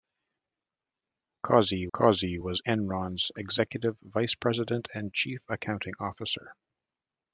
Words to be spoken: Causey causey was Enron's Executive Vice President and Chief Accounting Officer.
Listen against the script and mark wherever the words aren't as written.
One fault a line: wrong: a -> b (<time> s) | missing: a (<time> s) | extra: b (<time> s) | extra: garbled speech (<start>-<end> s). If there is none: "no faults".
no faults